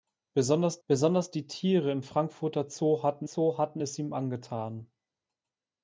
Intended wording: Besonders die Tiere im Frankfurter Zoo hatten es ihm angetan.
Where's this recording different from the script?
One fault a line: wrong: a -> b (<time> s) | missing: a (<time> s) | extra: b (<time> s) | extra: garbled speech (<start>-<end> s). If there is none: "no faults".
extra: besonders (0.9 s)
extra: Zoo hatten (3.3 s)